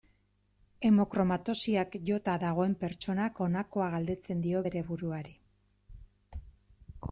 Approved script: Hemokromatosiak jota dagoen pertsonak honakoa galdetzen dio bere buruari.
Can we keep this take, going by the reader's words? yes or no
yes